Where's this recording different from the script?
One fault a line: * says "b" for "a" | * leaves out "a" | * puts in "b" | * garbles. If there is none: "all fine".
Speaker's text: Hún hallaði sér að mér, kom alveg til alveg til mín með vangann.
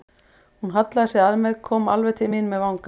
* leaves out "alveg til"